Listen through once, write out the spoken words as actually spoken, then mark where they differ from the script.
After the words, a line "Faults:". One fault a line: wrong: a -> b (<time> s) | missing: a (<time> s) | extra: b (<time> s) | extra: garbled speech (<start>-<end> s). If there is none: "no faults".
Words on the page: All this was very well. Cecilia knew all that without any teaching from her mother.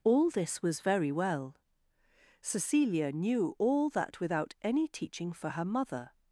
All this was very well. Cecilia knew all that without any teaching for her mother.
Faults:
wrong: from -> for (5.3 s)